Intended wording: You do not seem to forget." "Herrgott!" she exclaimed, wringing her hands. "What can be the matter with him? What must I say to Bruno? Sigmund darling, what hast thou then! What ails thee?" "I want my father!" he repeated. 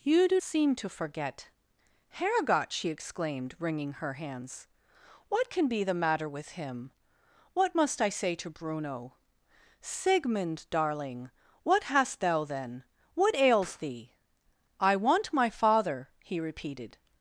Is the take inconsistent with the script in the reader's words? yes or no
yes